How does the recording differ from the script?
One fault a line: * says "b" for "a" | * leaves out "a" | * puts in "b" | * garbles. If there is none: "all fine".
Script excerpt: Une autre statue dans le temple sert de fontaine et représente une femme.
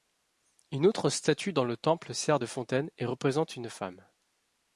all fine